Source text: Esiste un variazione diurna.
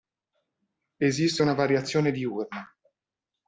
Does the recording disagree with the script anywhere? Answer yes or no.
yes